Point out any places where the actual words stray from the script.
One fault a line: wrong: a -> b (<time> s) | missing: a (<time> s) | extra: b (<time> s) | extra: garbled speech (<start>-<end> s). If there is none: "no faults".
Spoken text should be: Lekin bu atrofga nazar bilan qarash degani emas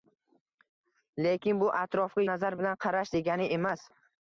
no faults